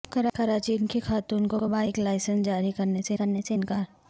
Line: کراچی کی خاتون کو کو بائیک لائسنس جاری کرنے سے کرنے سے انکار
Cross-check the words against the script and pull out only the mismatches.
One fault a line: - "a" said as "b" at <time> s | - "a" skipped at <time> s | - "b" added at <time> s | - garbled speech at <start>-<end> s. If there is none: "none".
none